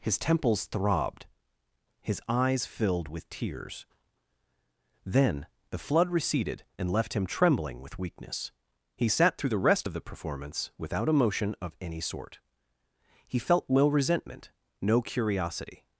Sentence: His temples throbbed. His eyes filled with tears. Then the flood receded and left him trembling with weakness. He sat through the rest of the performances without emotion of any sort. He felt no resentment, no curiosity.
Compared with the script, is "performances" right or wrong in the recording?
wrong